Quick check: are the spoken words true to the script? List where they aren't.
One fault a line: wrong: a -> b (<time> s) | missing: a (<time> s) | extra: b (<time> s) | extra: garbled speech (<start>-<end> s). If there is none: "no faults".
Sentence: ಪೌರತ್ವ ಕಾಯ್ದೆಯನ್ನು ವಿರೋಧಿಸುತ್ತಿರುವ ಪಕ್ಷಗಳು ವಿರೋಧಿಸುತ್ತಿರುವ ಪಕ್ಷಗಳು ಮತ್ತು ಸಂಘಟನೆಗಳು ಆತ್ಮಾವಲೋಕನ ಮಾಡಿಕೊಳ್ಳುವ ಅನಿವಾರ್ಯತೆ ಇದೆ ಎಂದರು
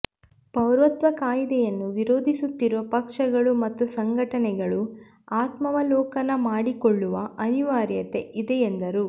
missing: ವಿರೋಧಿಸುತ್ತಿರುವ ಪಕ್ಷಗಳು (3.5 s)